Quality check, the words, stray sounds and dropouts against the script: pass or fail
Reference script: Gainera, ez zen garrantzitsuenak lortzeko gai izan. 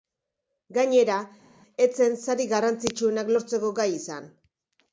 fail